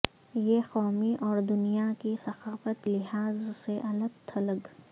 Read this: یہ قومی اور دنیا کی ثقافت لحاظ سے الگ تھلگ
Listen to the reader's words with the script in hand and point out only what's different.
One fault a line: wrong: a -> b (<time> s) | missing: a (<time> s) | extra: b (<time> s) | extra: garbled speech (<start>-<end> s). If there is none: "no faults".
no faults